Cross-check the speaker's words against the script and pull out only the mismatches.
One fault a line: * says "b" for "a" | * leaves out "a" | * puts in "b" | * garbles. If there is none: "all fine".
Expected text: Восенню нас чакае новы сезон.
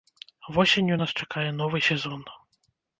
all fine